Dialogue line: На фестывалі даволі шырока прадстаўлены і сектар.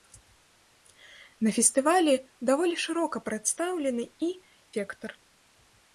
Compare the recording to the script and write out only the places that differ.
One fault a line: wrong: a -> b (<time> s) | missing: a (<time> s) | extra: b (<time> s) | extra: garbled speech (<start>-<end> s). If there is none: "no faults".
no faults